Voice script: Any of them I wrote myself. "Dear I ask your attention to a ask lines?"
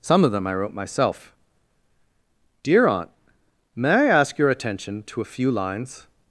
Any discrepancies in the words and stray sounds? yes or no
yes